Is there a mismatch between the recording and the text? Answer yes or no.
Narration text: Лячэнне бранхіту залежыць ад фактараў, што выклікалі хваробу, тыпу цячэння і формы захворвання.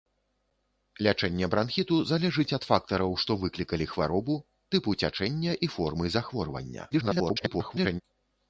yes